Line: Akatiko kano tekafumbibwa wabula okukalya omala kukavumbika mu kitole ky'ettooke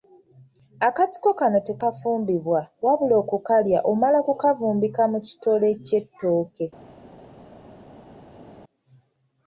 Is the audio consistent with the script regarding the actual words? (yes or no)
yes